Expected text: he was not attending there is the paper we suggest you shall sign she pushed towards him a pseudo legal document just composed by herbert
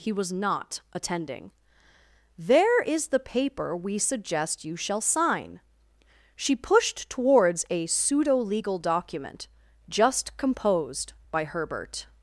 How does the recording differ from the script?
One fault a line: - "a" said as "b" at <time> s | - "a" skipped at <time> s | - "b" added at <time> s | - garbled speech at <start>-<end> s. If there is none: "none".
- "him" skipped at 7.7 s